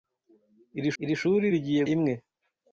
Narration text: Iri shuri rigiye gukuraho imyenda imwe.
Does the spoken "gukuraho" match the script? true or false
false